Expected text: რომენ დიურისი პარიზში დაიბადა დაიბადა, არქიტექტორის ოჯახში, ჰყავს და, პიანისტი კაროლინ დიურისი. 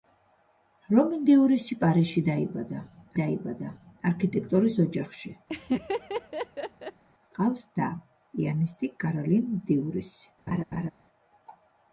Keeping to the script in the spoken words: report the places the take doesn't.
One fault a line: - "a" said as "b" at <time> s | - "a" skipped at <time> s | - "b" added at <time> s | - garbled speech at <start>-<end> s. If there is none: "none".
none